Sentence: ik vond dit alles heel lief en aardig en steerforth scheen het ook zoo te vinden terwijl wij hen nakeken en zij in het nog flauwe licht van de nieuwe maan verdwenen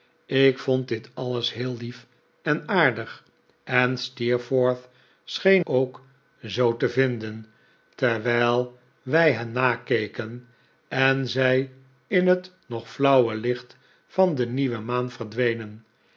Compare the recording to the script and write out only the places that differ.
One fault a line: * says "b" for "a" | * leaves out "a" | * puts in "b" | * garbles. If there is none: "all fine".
* leaves out "het"